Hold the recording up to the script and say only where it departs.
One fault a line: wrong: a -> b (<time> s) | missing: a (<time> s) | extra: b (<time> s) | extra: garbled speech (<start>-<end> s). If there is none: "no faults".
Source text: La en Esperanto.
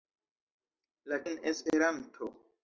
no faults